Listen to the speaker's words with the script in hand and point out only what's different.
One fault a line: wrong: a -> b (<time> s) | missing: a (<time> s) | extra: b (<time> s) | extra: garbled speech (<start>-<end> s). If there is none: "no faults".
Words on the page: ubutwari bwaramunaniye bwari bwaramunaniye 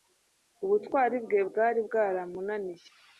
wrong: bwaramunaniye -> bwe (1.2 s)